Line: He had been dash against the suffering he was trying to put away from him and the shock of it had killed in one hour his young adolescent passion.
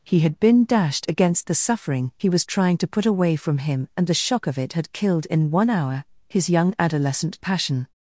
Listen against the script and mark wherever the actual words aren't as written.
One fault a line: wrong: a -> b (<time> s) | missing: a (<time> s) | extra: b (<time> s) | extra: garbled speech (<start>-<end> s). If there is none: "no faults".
wrong: dash -> dashed (0.7 s)